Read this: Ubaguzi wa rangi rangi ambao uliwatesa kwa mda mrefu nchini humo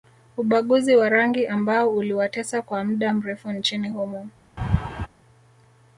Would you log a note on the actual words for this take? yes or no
yes